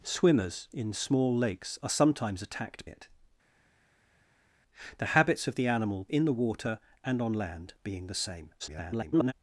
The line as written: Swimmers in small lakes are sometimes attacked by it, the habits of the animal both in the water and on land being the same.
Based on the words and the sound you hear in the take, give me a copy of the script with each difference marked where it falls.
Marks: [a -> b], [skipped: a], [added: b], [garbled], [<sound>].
Swimmers in small lakes are sometimes attacked [skipped: by] it, the habits of the animal [skipped: both] in the water and on land being the same. [garbled]